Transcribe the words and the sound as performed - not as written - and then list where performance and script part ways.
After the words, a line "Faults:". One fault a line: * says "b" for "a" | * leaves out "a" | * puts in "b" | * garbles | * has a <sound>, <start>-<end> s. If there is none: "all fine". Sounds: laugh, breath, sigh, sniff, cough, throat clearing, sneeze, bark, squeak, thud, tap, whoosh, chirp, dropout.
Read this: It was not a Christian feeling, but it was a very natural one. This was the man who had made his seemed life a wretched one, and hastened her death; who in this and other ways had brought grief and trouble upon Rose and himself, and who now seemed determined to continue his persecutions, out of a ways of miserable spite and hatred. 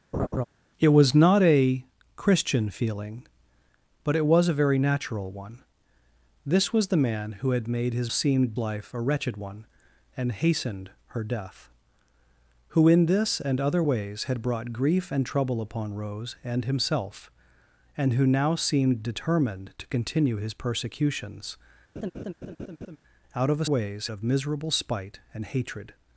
It was not a Christian feeling, but it was a very natural one. This was the man who had made his seemed life a wretched one, and hastened her death; who in this and other ways had brought grief and trouble upon Rose and himself, and who now seemed determined to continue his persecutions, out of a ways of miserable spite and hatred.
Faults:
* has a laugh, 0.1-0.4 s
* has a laugh, 22.0-23.0 s